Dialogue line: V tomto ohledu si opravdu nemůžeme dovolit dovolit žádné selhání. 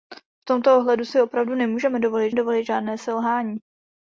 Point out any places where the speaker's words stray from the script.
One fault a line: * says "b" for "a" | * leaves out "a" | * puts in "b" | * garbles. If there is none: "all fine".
all fine